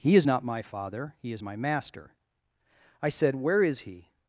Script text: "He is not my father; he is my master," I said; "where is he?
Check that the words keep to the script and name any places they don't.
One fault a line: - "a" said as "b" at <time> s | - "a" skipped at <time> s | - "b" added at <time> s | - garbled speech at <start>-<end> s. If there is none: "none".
none